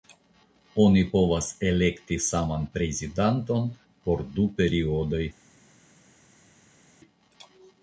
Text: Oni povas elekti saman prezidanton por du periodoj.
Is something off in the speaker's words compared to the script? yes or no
no